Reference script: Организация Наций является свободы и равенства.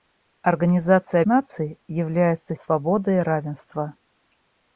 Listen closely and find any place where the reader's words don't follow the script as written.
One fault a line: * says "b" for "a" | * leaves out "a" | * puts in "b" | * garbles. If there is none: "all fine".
all fine